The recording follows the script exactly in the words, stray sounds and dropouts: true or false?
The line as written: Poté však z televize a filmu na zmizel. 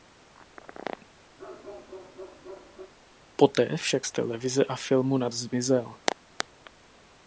false